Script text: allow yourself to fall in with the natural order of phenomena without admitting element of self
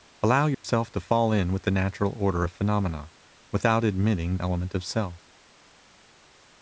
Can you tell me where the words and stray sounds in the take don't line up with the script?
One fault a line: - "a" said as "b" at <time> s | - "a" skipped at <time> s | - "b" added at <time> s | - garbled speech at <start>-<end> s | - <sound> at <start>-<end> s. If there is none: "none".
- dropout at 0.5-0.6 s